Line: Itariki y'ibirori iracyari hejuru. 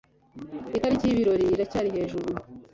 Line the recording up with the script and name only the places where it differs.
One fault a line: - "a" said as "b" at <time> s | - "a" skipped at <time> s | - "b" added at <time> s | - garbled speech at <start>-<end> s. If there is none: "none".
none